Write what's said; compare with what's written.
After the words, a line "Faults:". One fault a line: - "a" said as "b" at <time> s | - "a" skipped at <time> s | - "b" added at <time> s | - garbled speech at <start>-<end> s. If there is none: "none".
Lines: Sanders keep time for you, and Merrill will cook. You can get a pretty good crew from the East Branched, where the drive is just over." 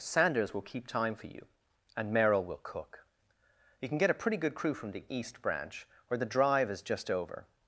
Sanders will keep time for you, and Merrill will cook. You can get a pretty good crew from the East Branch, where the drive is just over."
Faults:
- "will" added at 0.5 s
- "Branched" said as "Branch" at 5.4 s